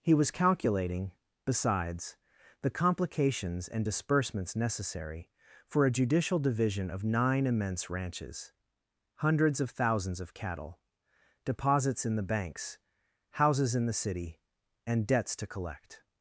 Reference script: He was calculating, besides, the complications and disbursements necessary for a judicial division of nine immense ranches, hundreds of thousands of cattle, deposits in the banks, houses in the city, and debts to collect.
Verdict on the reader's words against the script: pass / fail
pass